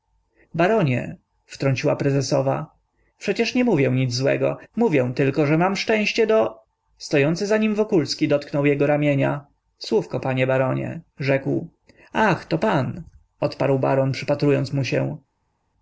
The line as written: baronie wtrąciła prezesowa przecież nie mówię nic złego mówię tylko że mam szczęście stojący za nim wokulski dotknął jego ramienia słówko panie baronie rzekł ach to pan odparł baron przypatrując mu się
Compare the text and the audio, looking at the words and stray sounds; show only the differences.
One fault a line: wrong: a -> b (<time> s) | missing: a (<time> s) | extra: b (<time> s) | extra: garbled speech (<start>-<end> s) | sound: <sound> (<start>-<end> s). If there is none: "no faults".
extra: do (6.3 s)